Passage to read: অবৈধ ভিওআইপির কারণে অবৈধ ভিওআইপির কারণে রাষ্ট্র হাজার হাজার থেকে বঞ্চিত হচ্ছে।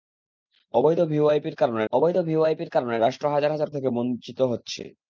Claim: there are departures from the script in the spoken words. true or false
false